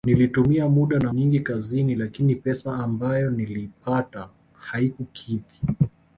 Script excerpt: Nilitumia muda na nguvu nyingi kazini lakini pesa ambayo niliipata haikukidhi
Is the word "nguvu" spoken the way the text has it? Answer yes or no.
no